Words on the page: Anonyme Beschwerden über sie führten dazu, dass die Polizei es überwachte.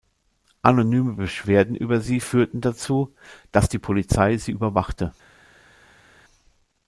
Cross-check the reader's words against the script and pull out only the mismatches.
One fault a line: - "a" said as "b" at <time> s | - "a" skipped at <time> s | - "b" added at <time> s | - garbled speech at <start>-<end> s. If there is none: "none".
- "es" said as "sie" at 4.4 s